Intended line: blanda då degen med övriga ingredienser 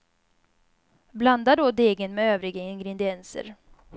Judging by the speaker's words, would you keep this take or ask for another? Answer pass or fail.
pass